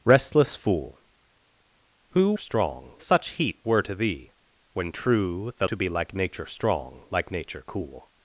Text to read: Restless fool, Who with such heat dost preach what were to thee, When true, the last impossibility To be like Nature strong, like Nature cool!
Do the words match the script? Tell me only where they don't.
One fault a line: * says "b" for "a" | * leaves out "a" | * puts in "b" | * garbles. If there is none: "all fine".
* says "strong" for "with"
* leaves out "dost preach what"
* leaves out "last impossibility"